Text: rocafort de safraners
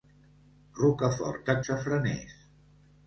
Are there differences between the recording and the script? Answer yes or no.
no